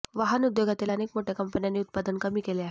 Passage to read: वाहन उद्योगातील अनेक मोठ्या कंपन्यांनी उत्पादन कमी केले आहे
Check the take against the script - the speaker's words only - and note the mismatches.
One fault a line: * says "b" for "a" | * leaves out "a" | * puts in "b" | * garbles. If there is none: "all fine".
all fine